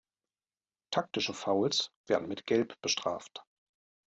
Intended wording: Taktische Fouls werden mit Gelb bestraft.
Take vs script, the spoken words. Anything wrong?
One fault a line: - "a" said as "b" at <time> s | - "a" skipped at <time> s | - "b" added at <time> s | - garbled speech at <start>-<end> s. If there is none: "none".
none